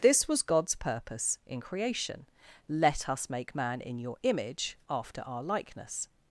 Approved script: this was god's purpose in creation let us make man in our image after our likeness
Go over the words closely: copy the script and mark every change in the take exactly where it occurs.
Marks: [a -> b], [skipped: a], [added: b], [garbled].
this was god's purpose in creation let us make man in [our -> your] image after our likeness